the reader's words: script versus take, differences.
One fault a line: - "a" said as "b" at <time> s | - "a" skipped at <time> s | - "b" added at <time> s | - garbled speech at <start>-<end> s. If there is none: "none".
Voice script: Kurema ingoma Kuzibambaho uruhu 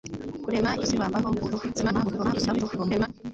- "ingoma" skipped at 0.7 s
- garbled speech at 1.7-3.1 s